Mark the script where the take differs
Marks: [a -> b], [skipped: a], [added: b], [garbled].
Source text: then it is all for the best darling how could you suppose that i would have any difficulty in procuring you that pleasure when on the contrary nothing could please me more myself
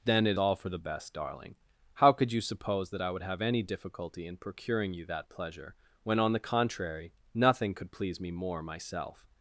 then it [skipped: is] all for the best darling how could you suppose that i would have any difficulty in procuring you that pleasure when on the contrary nothing could please me more myself